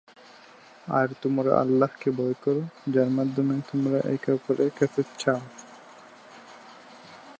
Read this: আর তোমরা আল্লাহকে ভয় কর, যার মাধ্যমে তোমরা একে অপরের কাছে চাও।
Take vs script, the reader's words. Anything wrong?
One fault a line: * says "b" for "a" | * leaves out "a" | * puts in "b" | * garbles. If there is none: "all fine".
all fine